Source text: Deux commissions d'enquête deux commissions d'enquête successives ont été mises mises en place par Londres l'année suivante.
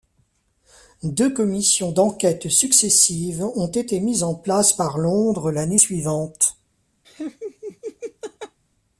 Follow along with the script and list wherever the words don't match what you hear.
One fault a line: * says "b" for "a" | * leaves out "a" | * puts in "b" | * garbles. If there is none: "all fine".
* leaves out "deux commissions d'enquête"
* leaves out "mises"